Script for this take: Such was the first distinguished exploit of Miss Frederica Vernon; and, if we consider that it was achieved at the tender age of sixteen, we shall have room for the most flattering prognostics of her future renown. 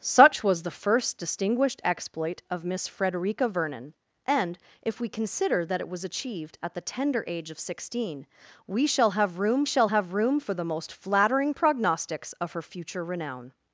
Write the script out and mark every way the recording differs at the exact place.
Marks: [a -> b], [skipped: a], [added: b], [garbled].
Such was the first distinguished exploit of Miss Frederica Vernon; and, if we consider that it was achieved at the tender age of sixteen, we shall have room [added: shall have room] for the most flattering prognostics of her future renown.